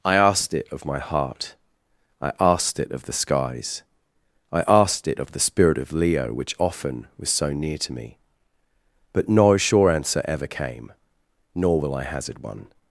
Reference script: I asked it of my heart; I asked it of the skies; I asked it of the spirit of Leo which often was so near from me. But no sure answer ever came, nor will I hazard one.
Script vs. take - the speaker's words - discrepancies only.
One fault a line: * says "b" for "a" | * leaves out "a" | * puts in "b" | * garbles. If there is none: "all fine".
* says "to" for "from"